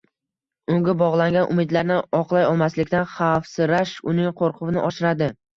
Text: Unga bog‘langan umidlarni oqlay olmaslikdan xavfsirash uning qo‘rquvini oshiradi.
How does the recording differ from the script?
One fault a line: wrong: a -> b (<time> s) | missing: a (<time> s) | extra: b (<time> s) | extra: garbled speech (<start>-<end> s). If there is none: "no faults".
no faults